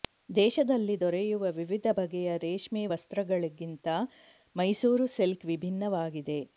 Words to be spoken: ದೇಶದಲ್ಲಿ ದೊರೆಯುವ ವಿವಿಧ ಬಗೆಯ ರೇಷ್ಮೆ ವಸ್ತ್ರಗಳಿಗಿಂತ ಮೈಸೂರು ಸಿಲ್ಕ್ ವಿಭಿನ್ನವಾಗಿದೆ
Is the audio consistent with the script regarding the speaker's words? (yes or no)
yes